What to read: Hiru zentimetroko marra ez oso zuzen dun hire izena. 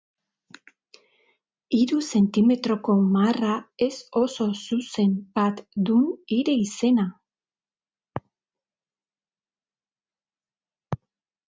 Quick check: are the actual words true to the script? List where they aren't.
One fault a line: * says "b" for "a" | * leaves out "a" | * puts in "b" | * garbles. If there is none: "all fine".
* puts in "bat"